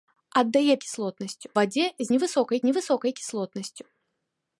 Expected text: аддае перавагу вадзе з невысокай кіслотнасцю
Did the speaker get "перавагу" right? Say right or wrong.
wrong